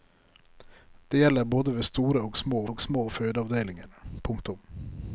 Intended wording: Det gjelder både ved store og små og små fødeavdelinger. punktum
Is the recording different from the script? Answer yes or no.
no